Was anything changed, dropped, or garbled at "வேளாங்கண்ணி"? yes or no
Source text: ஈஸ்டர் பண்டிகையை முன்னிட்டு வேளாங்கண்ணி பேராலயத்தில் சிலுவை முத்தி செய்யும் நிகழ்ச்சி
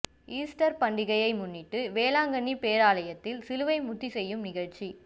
no